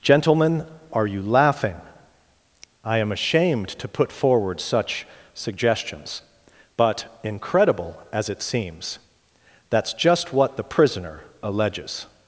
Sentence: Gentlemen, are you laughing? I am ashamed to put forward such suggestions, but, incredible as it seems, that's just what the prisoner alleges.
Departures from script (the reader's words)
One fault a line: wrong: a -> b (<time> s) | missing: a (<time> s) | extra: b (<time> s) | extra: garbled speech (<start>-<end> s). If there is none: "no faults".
no faults